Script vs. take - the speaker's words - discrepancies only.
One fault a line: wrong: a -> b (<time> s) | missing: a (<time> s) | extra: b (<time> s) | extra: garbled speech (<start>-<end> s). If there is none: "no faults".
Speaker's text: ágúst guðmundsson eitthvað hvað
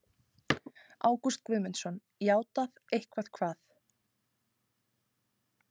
extra: játað (2.3 s)